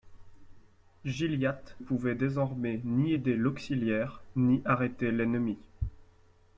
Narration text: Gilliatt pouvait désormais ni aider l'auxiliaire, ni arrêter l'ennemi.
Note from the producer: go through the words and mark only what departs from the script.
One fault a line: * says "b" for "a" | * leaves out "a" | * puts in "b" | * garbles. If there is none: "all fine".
all fine